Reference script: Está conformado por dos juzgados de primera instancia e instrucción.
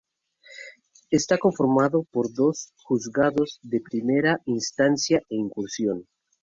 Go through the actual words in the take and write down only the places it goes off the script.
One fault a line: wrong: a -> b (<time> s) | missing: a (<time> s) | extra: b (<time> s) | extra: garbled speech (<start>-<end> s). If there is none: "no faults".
no faults